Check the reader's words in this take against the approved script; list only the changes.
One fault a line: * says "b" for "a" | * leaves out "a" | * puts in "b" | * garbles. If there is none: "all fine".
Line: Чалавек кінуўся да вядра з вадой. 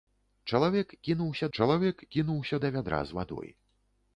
* puts in "чалавек кінуўся"